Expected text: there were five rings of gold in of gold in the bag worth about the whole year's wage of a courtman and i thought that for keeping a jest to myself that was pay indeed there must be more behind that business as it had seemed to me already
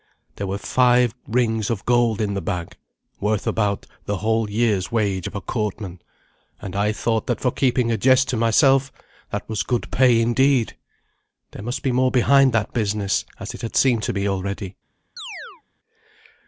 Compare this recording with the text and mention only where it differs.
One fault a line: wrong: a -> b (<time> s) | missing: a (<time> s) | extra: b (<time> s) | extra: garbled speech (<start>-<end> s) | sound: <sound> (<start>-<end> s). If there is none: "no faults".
missing: of gold in (2.3 s)
extra: good (9.6 s)
sound: chirp (15.2-15.6 s)